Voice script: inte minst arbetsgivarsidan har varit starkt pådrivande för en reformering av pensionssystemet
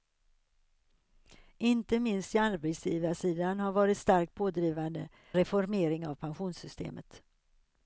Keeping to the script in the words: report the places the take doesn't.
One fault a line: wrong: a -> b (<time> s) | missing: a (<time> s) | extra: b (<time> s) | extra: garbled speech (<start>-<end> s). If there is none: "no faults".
missing: för en (5.1 s)